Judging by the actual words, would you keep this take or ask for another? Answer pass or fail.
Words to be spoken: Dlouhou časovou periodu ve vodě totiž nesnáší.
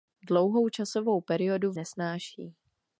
fail